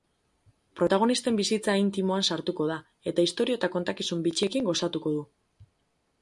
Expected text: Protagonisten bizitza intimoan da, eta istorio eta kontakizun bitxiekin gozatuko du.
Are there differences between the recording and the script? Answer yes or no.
yes